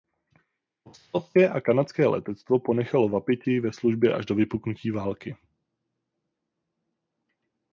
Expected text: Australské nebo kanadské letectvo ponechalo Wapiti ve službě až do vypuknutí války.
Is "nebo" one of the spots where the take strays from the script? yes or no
yes